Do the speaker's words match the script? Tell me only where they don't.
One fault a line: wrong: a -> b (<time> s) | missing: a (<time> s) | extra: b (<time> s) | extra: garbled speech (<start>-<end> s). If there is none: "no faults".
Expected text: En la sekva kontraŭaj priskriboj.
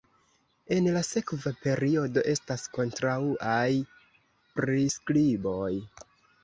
extra: periodo estas (1.6 s)